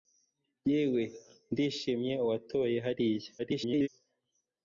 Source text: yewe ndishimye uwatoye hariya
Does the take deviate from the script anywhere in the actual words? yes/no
yes